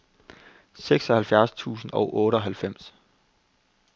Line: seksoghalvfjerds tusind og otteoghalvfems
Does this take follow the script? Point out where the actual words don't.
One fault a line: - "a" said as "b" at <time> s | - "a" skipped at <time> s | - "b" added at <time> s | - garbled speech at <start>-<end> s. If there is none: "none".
none